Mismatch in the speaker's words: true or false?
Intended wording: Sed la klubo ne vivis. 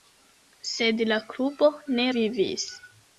false